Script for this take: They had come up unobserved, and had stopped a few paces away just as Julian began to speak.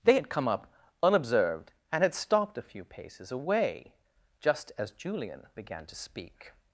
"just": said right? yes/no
yes